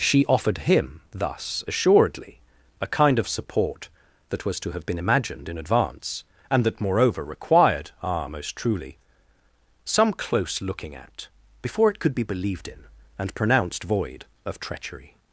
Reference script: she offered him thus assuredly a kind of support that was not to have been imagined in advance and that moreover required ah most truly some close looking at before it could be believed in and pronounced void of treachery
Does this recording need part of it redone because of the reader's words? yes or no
yes